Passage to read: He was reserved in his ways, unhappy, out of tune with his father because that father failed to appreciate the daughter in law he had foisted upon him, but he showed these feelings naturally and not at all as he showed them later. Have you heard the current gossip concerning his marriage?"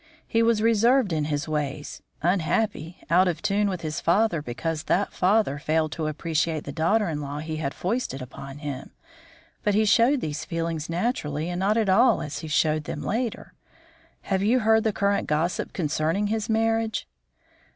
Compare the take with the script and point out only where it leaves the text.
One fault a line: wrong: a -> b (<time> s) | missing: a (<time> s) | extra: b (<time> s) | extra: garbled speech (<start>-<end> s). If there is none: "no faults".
no faults